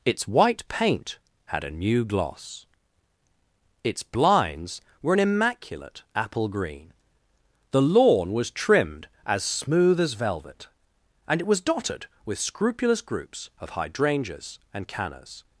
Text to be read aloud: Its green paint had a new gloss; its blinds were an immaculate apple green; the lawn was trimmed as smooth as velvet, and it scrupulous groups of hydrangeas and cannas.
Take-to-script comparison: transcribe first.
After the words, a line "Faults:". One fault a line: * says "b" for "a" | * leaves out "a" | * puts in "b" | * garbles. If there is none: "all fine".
Its white paint had a new gloss; its blinds were an immaculate apple green; the lawn was trimmed as smooth as velvet, and it was dotted with scrupulous groups of hydrangeas and cannas.
Faults:
* says "white" for "green"
* puts in "was dotted with"